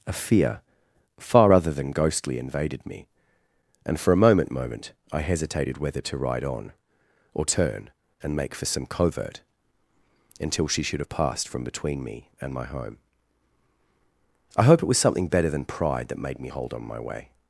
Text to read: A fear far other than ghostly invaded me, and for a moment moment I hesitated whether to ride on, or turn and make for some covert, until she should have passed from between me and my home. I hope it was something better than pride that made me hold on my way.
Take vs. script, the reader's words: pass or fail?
pass